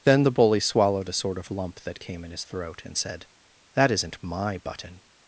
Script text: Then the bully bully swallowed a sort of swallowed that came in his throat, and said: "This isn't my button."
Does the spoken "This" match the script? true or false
false